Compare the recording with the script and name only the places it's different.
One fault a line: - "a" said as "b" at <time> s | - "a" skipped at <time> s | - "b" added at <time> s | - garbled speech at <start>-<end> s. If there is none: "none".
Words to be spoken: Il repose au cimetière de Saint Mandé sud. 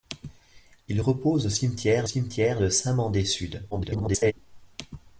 - "cimetière" added at 2.0 s
- garbled speech at 3.7-4.3 s